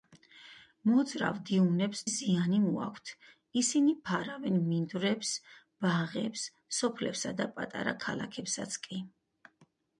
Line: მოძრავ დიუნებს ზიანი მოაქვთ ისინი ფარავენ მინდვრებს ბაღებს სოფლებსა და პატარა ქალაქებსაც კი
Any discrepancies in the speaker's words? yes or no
no